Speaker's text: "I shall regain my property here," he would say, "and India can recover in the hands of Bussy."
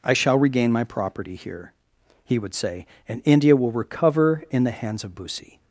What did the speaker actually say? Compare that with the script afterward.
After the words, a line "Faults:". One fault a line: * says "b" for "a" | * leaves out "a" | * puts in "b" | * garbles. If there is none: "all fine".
"I shall regain my property here," he would say, "and India will recover in the hands of Bussy."
Faults:
* says "will" for "can"